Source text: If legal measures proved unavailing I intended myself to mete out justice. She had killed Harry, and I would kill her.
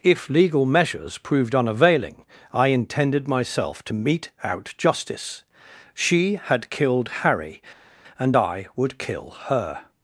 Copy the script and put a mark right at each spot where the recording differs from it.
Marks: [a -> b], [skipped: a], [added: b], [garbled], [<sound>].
If legal measures proved unavailing I intended myself to mete out justice. She had killed Harry, and I would kill her.